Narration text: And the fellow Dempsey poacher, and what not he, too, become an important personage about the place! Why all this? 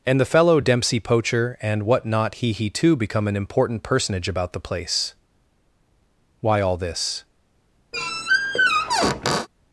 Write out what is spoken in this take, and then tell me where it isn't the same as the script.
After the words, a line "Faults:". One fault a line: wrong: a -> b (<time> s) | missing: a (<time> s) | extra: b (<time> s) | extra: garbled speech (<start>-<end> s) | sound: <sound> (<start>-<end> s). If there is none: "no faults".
And the fellow Dempsey poacher, and what not he he, too, become an important personage about the place! Why all this?
Faults:
extra: he (2.5 s)
sound: squeak (7.9-9.5 s)